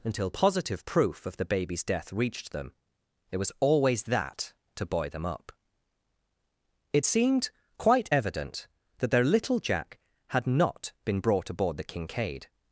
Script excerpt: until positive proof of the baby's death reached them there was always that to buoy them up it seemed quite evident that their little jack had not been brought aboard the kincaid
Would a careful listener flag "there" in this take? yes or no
yes